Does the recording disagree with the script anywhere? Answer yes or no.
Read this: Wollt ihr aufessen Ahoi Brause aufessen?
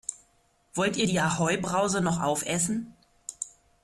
yes